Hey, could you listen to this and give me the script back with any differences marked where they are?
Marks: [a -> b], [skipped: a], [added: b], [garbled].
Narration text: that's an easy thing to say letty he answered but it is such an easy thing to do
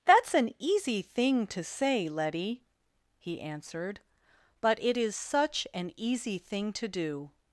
that's an easy thing to say letty he answered but it is such an easy thing to do